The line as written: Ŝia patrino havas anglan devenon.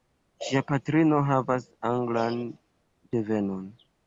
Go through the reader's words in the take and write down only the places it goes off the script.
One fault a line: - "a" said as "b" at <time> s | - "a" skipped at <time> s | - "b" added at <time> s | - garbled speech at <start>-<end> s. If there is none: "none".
none